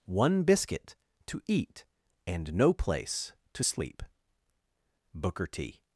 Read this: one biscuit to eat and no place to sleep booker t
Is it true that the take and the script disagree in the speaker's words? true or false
false